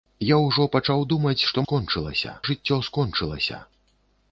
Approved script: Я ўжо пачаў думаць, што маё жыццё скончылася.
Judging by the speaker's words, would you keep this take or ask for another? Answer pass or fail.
fail